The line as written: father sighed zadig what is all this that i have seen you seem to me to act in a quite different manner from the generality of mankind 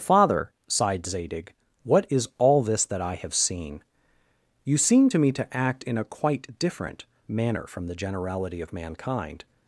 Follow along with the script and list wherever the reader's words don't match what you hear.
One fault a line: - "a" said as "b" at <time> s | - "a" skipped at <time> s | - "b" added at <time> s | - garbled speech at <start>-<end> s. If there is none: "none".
none